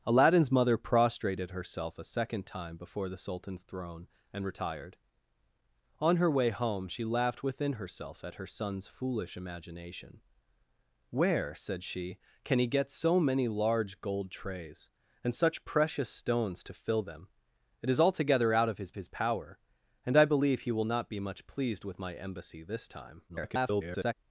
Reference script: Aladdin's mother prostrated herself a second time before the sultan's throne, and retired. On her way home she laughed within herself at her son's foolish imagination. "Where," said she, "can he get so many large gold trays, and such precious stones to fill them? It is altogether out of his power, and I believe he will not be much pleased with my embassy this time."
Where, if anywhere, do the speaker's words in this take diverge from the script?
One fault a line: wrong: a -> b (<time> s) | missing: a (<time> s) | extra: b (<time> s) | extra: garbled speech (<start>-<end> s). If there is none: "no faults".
extra: his (19.0 s)
extra: garbled speech (23.3-24.1 s)